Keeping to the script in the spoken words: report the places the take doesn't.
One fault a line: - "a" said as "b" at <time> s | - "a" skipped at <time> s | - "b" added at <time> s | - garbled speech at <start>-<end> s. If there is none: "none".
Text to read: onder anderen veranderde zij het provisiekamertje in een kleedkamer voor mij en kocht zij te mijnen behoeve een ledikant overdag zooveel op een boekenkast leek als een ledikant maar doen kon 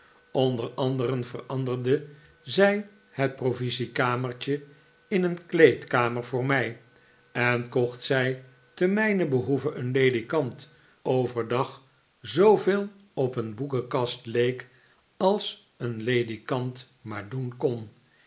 none